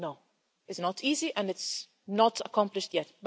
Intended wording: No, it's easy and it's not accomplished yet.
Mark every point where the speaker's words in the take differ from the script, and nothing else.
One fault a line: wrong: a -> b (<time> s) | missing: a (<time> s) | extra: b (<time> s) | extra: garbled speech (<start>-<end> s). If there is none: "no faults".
extra: not (0.8 s)